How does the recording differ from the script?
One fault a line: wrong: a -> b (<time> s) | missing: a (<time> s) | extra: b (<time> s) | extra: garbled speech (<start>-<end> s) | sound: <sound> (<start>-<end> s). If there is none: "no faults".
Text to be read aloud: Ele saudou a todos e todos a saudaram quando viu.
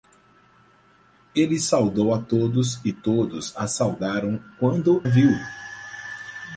no faults